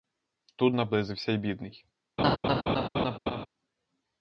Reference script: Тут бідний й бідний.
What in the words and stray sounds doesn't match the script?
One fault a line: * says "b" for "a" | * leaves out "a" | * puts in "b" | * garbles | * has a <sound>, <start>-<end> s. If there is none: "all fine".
* says "наблизився" for "бідний"
* has a laugh, 2.2-3.5 s